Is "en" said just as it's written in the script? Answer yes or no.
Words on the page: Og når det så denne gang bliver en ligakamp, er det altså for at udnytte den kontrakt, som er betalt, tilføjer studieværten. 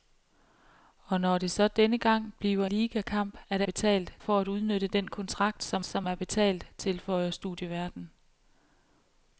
no